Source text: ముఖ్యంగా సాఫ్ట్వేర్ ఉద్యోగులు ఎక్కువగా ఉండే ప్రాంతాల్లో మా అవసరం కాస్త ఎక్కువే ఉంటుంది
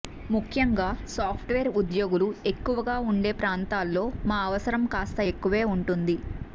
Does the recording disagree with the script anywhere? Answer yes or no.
no